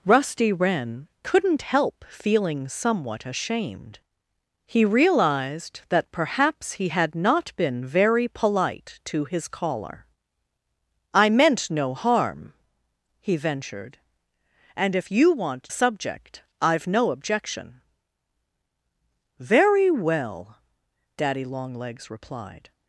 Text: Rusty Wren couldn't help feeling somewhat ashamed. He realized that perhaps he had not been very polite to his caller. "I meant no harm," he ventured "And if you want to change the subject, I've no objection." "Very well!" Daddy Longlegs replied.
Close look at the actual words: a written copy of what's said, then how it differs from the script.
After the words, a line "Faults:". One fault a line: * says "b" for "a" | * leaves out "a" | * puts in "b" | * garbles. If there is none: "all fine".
Rusty Wren couldn't help feeling somewhat ashamed. He realized that perhaps he had not been very polite to his caller. "I meant no harm," he ventured "And if you want subject, I've no objection." "Very well!" Daddy Longlegs replied.
Faults:
* leaves out "to change the"